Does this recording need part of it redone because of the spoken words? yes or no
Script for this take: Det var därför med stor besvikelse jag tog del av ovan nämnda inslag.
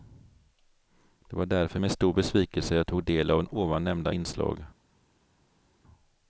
no